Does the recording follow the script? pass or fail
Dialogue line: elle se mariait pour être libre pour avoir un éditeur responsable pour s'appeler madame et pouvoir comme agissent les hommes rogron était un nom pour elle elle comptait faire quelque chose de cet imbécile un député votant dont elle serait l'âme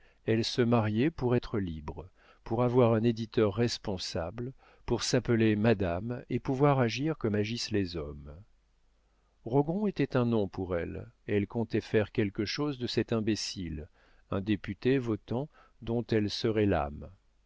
fail